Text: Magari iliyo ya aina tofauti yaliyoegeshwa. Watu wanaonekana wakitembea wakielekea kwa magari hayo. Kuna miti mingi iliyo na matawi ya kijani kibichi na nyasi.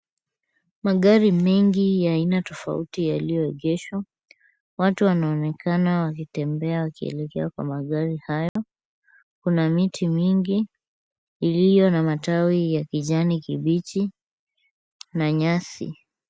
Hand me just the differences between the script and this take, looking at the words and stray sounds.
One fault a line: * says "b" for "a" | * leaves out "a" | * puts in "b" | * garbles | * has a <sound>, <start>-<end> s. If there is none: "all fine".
* says "mengi" for "iliyo"
* has a dropout, 8.5-8.6 s